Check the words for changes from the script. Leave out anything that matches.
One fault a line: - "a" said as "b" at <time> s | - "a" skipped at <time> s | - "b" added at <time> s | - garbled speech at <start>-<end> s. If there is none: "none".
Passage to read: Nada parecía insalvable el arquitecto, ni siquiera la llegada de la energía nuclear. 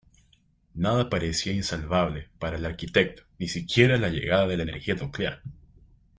- "para" added at 2.4 s